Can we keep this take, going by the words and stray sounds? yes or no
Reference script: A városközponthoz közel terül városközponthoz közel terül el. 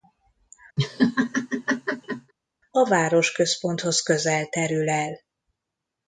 no